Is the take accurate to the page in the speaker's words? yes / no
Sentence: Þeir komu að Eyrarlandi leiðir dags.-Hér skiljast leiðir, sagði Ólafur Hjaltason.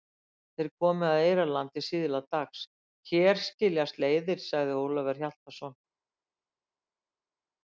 no